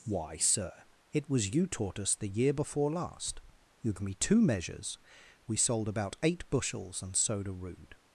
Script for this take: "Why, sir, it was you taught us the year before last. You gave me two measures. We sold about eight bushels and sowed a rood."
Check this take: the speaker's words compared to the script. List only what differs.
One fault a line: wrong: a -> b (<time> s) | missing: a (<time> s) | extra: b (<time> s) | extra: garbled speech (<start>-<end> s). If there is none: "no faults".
missing: gave (3.9 s)